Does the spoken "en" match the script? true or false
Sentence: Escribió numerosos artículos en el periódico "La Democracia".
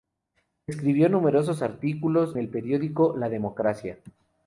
false